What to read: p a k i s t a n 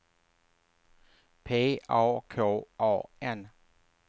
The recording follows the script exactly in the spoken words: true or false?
false